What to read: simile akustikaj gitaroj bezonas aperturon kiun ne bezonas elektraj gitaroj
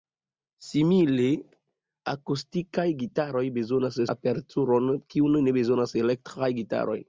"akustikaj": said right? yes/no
yes